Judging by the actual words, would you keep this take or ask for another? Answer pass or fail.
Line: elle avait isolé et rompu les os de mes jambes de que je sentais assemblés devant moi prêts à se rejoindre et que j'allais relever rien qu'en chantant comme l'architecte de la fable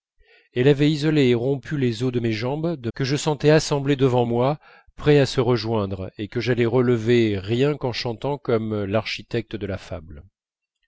pass